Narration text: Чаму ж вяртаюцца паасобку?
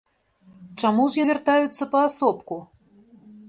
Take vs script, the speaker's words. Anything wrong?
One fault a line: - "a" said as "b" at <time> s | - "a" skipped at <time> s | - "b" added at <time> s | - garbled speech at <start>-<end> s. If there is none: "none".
none